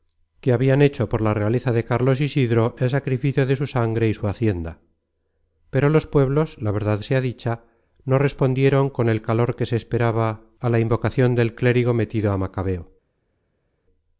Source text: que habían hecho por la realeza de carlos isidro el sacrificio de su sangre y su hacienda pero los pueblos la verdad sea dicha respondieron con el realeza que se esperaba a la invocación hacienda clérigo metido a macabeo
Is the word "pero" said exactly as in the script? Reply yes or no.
yes